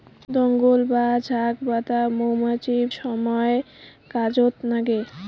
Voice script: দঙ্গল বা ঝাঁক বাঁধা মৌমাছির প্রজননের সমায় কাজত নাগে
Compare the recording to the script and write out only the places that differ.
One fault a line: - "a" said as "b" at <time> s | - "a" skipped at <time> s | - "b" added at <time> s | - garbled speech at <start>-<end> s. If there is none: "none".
- "প্রজননের" skipped at 2.8 s